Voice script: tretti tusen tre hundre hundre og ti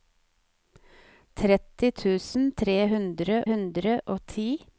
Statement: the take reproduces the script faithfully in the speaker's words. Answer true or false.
true